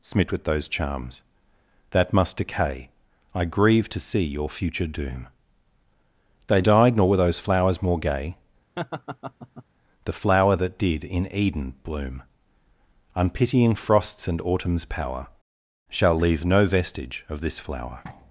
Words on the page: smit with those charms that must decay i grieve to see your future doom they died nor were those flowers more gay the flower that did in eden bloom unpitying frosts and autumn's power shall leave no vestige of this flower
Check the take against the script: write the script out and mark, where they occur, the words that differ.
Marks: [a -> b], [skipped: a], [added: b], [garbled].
smit with those charms that must decay i grieve to see your future doom they died nor were those flowers more gay the flower that did in eden bloom unpitying frosts and autumn's power shall leave no vestige of this flower